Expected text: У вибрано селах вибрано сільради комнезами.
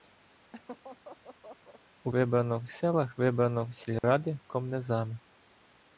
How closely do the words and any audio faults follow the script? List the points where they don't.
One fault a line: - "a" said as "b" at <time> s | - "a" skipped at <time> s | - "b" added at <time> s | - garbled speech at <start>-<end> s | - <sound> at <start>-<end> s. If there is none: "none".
- laugh at 0.5-1.8 s
- dropout at 4.0-4.0 s